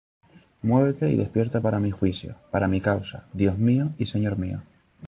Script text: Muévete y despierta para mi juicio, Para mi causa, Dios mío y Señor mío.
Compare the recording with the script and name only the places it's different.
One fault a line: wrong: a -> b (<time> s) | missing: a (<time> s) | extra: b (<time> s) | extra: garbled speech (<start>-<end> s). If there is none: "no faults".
no faults